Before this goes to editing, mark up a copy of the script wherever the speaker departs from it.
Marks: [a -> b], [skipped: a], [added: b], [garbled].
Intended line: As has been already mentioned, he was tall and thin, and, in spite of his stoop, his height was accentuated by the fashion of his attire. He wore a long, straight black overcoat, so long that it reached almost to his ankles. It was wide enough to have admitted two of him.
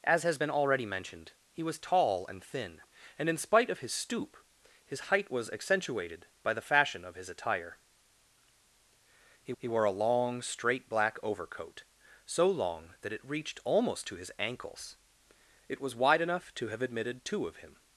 As has been already mentioned, he was tall and thin, and, in spite of his stoop, his height was accentuated by the fashion of his attire. He [added: he] wore a long, straight black overcoat, so long that it reached almost to his ankles. It was wide enough to have admitted two of him.